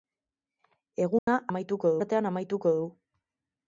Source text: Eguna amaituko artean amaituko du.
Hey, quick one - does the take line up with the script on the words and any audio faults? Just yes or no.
no